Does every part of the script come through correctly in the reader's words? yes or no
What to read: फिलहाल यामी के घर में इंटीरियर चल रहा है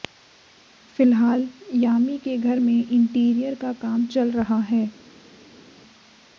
no